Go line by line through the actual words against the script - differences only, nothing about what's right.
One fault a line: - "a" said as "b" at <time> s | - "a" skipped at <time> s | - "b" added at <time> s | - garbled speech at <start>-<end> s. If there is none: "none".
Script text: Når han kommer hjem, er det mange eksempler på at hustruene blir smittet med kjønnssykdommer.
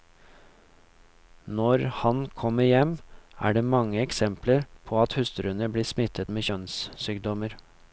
none